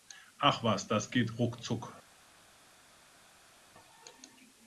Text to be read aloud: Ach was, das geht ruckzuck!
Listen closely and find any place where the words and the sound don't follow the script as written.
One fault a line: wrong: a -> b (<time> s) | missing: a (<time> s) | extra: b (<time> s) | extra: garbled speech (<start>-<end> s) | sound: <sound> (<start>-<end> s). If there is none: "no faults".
no faults